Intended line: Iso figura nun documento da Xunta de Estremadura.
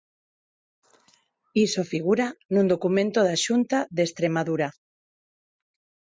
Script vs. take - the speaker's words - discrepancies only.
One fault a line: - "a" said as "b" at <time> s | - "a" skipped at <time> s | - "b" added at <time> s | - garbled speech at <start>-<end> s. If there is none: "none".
none